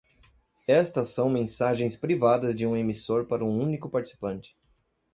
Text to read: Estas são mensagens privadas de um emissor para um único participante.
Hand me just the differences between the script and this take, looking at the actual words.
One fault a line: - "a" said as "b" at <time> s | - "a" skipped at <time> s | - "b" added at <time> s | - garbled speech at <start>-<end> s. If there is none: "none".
none